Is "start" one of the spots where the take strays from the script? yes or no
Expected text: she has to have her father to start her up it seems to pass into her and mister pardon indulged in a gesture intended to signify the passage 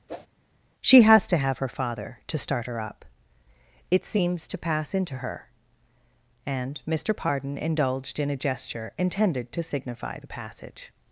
no